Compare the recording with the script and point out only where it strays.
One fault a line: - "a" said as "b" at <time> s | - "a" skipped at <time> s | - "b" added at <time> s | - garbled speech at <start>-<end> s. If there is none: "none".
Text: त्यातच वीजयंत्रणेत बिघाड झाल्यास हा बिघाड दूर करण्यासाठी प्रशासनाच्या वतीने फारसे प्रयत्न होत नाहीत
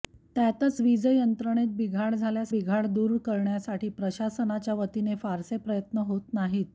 - "हा" skipped at 2.5 s